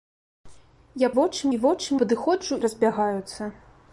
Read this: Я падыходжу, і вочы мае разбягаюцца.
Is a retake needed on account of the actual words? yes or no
yes